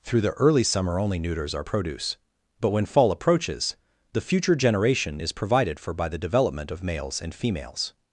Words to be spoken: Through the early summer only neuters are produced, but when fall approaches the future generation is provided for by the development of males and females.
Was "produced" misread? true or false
true